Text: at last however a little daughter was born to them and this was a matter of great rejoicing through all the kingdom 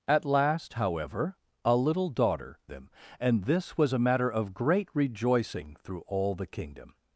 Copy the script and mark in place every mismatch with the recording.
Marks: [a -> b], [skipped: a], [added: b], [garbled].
at last however a little daughter [skipped: was born to] them and this was a matter of great rejoicing through all the kingdom